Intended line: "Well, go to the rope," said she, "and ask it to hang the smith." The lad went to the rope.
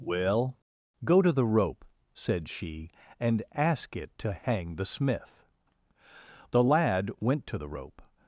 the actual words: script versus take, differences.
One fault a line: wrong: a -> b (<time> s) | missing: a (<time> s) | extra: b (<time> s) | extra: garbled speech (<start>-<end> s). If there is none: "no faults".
no faults